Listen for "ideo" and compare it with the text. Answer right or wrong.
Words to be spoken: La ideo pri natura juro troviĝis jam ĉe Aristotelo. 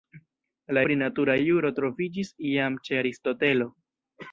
wrong